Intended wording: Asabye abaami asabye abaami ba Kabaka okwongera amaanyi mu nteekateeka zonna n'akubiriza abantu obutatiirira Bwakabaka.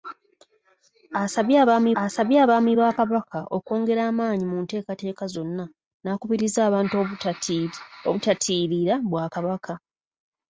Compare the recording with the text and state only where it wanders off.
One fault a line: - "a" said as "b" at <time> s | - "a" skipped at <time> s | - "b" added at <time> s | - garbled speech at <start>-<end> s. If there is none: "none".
none